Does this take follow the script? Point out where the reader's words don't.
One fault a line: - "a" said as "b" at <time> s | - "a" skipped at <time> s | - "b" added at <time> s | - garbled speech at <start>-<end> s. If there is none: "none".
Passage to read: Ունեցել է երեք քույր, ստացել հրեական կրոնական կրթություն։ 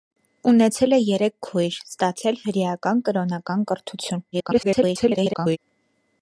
- garbled speech at 4.3-5.6 s